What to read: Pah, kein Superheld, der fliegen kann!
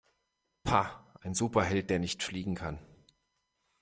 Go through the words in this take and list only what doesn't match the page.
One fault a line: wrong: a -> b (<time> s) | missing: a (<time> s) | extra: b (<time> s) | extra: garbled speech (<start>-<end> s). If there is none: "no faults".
wrong: kein -> ein (1.2 s)
extra: nicht (2.0 s)